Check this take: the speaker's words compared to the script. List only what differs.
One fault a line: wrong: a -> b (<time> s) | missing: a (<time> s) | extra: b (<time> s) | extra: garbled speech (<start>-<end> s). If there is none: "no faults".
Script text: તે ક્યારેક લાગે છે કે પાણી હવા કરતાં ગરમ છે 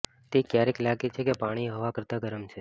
no faults